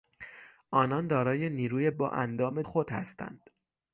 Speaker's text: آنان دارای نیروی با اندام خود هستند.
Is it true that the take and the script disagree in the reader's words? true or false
false